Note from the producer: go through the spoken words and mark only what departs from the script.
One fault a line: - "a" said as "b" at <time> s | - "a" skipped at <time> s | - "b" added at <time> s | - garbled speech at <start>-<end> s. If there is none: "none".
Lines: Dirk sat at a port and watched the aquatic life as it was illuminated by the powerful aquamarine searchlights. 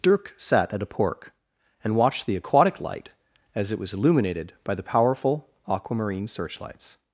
- "port" said as "pork" at 0.9 s
- "life" said as "light" at 2.8 s